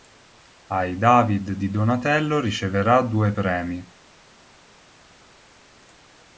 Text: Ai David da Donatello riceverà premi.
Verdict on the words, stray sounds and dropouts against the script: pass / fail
fail